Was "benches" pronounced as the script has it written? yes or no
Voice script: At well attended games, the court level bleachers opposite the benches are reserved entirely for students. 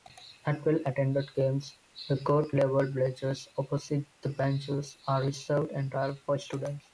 yes